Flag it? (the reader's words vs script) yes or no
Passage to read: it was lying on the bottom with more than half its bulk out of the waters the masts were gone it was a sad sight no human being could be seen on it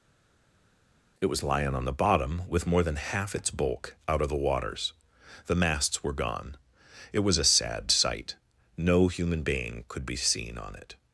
no